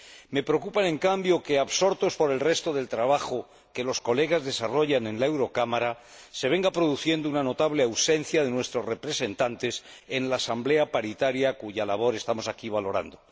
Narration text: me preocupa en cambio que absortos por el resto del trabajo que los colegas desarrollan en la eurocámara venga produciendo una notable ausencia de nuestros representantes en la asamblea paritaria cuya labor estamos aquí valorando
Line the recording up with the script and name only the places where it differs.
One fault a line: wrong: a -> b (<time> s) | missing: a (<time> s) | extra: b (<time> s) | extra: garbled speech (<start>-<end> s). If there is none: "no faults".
extra: se (6.3 s)